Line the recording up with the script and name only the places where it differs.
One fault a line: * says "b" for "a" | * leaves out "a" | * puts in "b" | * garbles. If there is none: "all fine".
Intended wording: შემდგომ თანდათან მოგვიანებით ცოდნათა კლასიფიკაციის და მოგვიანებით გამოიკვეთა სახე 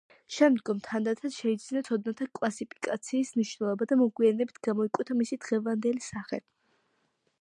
* says "შეიძინა" for "მოგვიანებით"
* puts in "მნიშვნელობა"
* puts in "მისი დღევანდელი"